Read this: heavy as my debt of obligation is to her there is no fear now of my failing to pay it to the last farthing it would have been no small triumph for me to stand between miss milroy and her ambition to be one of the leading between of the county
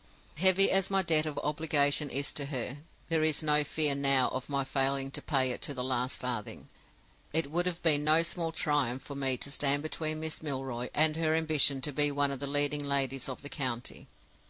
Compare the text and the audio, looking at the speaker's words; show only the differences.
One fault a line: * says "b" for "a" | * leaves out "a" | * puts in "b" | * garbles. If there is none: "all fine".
* says "ladies" for "between"